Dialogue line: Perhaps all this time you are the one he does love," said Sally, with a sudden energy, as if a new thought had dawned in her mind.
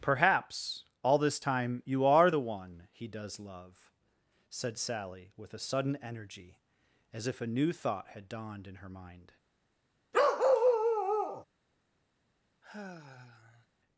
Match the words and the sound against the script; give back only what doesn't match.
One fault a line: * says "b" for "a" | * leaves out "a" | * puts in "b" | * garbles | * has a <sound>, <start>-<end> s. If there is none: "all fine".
* has a bark, 10.1-11.4 s
* has a sigh, 12.6-13.7 s